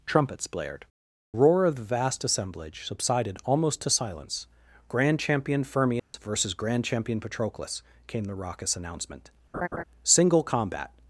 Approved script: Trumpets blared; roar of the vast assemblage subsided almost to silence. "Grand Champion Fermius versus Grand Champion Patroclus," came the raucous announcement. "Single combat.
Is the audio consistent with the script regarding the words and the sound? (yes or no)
no